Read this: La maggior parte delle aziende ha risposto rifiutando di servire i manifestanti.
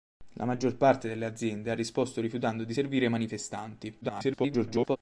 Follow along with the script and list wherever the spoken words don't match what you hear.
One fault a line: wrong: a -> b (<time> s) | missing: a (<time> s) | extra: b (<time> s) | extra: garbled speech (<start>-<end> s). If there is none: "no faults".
extra: garbled speech (4.0-5.0 s)